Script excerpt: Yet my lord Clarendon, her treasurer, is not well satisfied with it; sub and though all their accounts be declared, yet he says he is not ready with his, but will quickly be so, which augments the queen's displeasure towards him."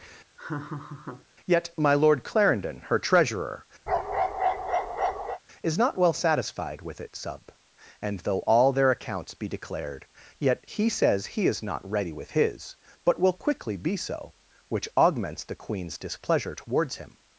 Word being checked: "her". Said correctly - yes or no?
yes